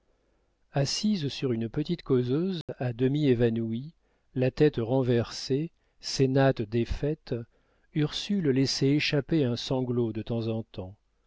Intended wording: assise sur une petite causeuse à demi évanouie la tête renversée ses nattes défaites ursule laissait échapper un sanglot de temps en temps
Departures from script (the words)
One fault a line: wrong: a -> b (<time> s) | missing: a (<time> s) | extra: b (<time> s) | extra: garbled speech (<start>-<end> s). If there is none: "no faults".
no faults